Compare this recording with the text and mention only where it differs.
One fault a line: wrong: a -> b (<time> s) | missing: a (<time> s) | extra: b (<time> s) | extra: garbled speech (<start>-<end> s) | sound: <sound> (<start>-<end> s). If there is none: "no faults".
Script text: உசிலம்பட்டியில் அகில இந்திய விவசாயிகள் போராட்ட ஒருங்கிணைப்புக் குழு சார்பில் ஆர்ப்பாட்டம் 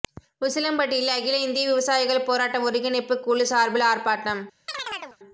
sound: chirp (4.7-5.2 s)